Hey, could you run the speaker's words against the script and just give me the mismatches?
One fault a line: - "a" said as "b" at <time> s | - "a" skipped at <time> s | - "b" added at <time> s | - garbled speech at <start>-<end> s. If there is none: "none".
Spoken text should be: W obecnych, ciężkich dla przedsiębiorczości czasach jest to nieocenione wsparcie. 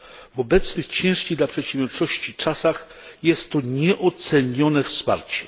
none